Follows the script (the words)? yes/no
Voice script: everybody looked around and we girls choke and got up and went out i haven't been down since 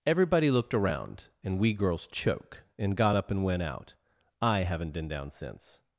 yes